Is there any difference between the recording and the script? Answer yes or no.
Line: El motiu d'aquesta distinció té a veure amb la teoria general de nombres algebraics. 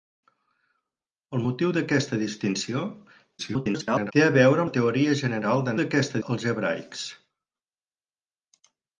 yes